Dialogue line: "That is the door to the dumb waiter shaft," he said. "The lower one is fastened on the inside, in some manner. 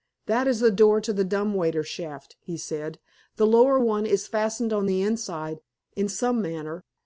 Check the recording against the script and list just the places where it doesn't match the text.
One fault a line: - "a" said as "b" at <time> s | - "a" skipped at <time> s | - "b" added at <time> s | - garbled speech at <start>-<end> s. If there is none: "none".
none